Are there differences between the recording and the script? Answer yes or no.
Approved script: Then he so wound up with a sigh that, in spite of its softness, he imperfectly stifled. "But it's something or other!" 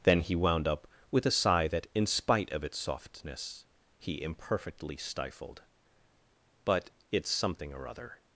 yes